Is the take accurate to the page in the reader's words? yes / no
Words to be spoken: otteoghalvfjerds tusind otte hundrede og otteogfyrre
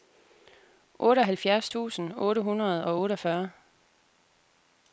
yes